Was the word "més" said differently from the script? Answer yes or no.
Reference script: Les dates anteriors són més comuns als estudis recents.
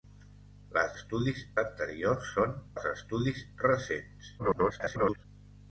yes